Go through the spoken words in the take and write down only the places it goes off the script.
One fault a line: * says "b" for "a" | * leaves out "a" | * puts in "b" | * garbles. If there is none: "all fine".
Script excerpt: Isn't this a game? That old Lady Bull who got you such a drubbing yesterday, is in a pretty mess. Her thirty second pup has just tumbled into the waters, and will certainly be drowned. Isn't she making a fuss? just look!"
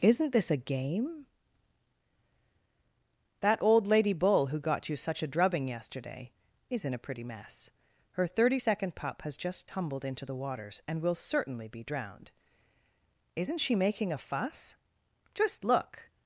all fine